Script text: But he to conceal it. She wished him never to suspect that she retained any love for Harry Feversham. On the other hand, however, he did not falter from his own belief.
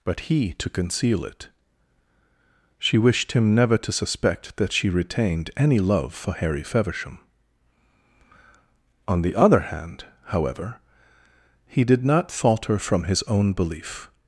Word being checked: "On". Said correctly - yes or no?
yes